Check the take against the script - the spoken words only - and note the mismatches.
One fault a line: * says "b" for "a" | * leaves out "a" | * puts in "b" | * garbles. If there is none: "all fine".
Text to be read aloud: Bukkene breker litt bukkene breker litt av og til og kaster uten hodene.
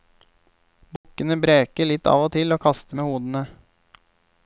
* leaves out "bukkene breker litt"
* says "med" for "uten"